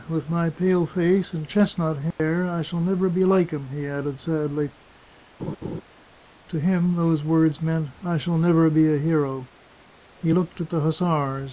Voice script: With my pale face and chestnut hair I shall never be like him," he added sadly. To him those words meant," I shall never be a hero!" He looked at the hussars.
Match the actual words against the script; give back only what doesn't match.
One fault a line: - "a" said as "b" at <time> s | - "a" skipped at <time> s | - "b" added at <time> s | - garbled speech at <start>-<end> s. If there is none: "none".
none